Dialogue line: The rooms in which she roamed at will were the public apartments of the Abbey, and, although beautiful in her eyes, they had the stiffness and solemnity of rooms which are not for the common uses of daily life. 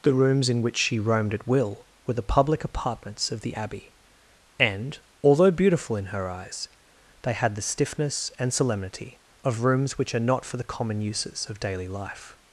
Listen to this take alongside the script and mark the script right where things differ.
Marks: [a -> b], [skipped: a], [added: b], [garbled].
The rooms in which she roamed at will were the public apartments of the Abbey, and, although beautiful in her eyes, they had the stiffness and solemnity of rooms which are not for the common uses of daily life.